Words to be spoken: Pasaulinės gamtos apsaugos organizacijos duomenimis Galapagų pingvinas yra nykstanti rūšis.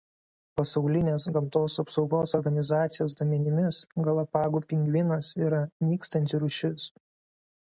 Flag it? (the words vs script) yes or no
no